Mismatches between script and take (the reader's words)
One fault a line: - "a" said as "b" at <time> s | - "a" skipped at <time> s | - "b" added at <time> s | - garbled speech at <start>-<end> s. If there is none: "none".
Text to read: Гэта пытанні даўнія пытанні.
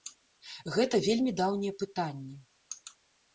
- "пытанні" said as "вельмі" at 1.1 s